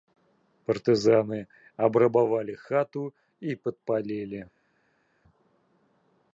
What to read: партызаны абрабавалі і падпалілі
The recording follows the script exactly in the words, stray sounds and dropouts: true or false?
false